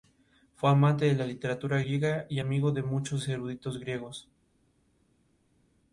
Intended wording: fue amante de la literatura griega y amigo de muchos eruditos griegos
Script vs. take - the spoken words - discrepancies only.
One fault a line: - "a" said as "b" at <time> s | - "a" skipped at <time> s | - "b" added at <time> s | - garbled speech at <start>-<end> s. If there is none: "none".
none